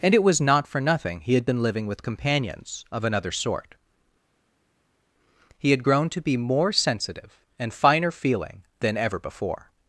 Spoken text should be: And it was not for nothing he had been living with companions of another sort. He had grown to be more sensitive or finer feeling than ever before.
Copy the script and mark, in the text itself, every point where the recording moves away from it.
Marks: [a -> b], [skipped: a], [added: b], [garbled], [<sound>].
And it was not for nothing he had been living with companions of another sort. He had grown to be more sensitive [or -> and] finer feeling than ever before.